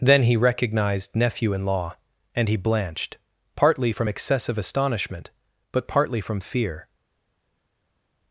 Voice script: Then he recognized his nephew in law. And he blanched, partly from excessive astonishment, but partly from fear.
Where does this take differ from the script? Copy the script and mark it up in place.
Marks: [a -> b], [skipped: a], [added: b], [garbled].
Then he recognized [skipped: his] nephew in law. And he blanched, partly from excessive astonishment, but partly from fear.